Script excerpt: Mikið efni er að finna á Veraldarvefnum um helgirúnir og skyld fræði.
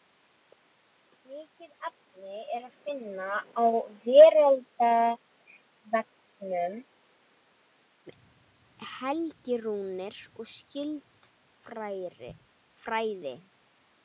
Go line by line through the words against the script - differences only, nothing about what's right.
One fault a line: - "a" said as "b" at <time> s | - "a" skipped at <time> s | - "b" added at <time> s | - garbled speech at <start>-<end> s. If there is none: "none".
none